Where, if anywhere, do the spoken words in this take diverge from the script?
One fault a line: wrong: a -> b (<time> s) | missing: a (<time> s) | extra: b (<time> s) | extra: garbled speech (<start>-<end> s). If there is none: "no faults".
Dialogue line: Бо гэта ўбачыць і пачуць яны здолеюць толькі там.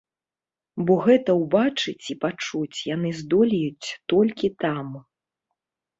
no faults